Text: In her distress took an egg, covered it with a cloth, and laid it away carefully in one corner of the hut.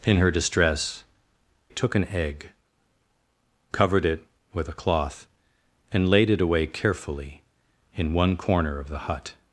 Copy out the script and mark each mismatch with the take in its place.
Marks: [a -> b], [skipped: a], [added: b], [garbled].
In her distress took an egg, covered it with a cloth, and laid it away carefully in one corner of the hut.